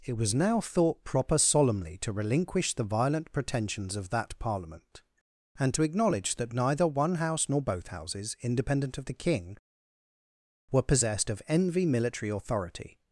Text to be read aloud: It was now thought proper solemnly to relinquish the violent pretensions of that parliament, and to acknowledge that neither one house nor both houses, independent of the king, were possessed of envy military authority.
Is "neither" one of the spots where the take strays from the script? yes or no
no